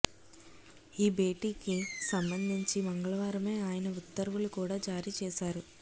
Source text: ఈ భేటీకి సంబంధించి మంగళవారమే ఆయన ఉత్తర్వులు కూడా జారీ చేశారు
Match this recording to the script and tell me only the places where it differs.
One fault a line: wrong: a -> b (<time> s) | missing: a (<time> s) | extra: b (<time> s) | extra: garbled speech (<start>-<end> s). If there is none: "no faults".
no faults